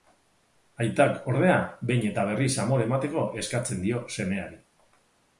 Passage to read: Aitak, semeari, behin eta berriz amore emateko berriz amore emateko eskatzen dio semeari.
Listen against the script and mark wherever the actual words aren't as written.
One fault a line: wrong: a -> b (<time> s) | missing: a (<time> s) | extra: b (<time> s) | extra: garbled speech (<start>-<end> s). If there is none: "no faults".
wrong: semeari -> ordea (1.3 s)
missing: berriz amore emateko (3.2 s)